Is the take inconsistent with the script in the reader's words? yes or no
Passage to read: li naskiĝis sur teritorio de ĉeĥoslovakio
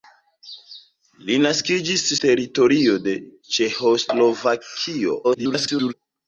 yes